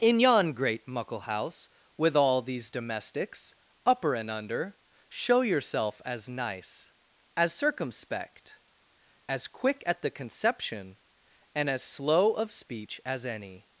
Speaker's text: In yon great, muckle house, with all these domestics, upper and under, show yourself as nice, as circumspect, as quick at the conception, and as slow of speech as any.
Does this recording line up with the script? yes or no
yes